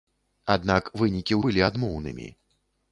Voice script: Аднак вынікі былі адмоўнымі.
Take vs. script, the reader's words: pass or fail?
pass